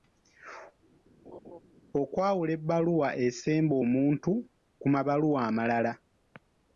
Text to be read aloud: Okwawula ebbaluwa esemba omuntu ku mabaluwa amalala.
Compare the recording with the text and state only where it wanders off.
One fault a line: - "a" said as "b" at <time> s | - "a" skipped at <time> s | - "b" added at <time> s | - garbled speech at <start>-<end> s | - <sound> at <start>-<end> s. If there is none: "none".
- laugh at 1.3-1.6 s